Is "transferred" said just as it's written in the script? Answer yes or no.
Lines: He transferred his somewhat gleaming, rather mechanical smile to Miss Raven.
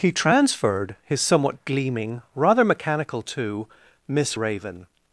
yes